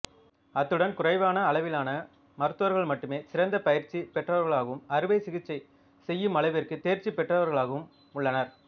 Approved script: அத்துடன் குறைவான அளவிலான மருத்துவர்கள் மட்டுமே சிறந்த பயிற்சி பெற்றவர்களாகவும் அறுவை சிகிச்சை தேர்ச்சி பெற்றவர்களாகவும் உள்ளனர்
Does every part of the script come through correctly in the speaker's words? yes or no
no